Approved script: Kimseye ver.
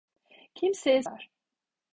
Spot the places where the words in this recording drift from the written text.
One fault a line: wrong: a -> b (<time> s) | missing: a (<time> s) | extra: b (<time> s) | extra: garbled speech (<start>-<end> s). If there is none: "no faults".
no faults